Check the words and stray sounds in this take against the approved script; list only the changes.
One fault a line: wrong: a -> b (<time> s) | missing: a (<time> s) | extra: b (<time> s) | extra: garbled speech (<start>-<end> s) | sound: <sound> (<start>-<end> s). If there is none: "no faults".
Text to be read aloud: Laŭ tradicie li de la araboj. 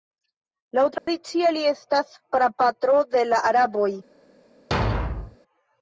sound: dropout (1.0-1.1 s)
extra: estas prapatro (1.7 s)
sound: thud (4.7-5.4 s)